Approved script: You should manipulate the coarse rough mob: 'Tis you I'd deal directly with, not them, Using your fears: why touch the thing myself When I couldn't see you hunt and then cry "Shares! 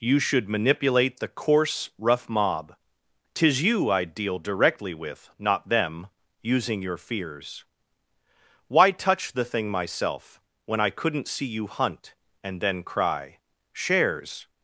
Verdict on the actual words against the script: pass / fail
pass